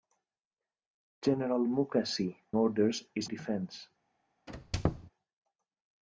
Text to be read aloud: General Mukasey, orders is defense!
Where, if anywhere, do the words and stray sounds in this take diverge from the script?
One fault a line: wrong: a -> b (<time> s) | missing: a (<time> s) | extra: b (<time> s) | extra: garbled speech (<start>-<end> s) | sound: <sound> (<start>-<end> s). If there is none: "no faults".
sound: squeak (4.5-5.1 s)